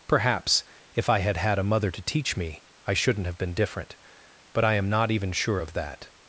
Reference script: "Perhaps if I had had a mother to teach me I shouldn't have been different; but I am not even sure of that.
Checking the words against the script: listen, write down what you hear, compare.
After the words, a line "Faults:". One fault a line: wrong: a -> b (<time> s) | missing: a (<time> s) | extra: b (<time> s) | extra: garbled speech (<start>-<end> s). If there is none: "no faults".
"Perhaps if I had had a mother to teach me I shouldn't have been different; but I am not even sure of that.
Faults:
no faults